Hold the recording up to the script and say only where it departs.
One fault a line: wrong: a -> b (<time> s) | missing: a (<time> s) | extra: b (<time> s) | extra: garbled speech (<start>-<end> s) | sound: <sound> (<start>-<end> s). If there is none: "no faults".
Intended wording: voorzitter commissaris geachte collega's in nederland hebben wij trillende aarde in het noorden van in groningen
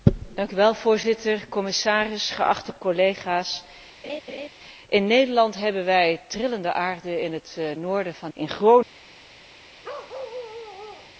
sound: laugh (4.0-4.5 s)
sound: bark (9.8-11.2 s)